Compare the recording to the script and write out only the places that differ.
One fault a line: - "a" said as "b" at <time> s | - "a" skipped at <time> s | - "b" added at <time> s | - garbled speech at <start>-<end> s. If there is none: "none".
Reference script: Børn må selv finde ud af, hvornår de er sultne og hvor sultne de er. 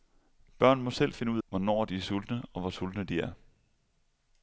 - "af" skipped at 1.4 s